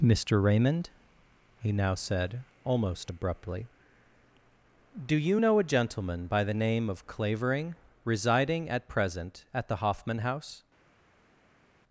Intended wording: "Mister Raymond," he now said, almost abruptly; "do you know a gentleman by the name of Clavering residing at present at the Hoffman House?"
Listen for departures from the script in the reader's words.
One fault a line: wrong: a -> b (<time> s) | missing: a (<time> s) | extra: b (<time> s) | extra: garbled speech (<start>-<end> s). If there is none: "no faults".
no faults